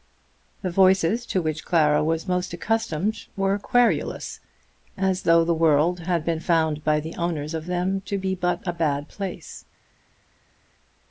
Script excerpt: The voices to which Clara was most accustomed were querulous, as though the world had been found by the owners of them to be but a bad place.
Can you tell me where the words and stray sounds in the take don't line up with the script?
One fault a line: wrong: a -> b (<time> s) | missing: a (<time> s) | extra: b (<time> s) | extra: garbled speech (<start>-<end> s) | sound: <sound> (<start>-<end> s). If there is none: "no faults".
no faults